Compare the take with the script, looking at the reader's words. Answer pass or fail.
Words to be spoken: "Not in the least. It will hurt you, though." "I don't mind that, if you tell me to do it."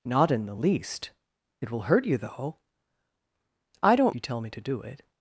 fail